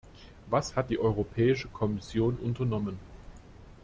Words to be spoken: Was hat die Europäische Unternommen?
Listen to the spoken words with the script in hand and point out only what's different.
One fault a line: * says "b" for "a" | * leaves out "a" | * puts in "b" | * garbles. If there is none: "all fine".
* puts in "Kommission"